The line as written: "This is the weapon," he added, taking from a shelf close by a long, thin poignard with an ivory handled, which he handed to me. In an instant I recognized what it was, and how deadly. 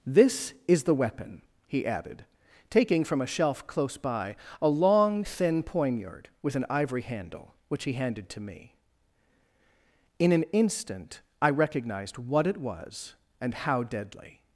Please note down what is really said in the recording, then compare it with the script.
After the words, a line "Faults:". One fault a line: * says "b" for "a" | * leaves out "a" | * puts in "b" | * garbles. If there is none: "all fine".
"This is the weapon," he added, taking from a shelf close by a long, thin poignard with an ivory handle, which he handed to me. In an instant I recognized what it was, and how deadly.
Faults:
* says "handle" for "handled"